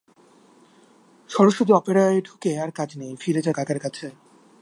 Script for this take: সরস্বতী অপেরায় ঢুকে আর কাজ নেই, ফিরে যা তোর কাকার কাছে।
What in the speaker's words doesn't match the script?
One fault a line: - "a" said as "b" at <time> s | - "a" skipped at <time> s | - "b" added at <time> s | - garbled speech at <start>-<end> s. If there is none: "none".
- "তোর" skipped at 3.5 s